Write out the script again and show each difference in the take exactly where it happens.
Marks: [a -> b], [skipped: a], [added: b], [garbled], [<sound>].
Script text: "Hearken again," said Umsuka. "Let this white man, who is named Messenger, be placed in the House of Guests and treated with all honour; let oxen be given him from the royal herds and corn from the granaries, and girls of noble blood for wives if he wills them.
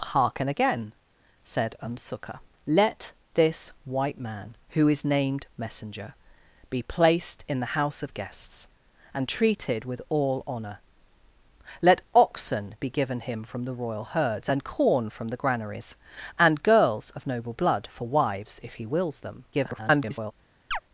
"Hearken again," said Umsuka. "Let this white man, who is named Messenger, be placed in the House of Guests and treated with all honour; let oxen be given him from the royal herds and corn from the granaries, and girls of noble blood for wives if he wills them. [garbled] [chirp]